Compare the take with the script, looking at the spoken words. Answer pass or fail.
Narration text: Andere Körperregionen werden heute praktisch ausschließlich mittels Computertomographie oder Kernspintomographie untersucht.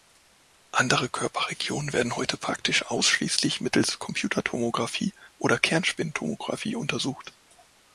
pass